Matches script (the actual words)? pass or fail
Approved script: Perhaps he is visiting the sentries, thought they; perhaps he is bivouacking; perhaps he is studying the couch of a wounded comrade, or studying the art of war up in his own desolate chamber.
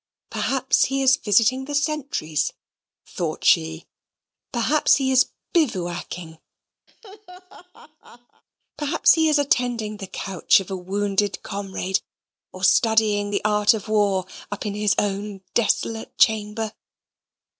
fail